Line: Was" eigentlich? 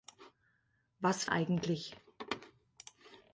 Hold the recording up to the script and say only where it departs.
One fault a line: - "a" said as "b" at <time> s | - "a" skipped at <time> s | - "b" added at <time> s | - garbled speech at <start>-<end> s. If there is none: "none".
none